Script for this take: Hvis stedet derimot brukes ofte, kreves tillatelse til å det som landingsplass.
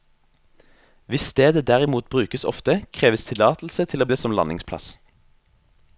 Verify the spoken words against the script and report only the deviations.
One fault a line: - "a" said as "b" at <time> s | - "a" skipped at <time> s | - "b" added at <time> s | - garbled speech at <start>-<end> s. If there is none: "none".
none